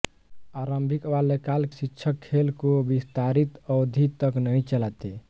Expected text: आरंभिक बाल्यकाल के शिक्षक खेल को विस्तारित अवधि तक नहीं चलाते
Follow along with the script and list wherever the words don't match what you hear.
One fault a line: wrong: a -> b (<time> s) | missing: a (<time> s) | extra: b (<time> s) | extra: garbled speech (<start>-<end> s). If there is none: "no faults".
missing: के (1.6 s)